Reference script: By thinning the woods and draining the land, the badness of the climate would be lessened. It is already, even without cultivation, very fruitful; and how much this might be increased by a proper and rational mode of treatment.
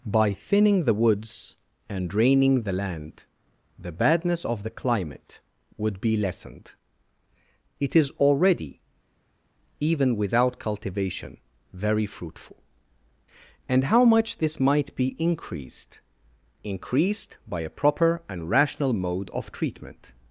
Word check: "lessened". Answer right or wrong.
right